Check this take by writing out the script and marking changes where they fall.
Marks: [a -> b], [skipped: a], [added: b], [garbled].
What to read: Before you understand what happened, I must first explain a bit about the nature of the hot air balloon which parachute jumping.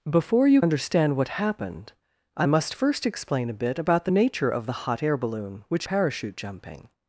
Before you understand what happened, I must first explain a bit about the nature of the hot air balloon which parachute jumping.